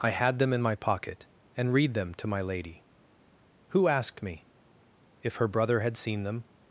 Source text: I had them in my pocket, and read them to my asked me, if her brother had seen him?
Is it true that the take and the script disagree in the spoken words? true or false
true